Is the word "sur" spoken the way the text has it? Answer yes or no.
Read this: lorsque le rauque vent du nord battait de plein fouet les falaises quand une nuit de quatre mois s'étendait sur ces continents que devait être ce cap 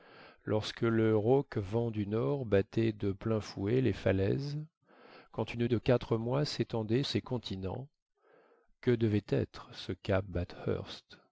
no